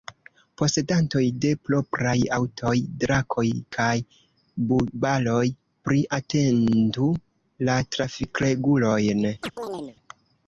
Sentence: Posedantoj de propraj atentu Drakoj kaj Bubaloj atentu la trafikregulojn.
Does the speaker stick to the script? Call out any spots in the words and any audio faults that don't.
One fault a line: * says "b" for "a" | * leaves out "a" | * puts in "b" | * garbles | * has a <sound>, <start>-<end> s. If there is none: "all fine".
* says "aŭtoj" for "atentu"
* puts in "pli"
* has a chirp, 9.4-10.0 s